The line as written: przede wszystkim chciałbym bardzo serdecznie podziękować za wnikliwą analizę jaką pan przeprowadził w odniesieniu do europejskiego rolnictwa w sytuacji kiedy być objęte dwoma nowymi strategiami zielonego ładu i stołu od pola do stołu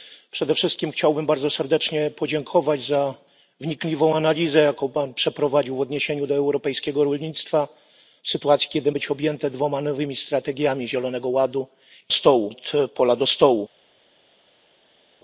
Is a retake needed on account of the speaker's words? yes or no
no